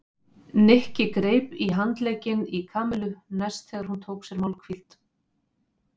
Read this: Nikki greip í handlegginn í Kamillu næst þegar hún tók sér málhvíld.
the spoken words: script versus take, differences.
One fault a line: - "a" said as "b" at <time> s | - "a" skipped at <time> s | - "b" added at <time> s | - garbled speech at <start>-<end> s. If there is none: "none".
none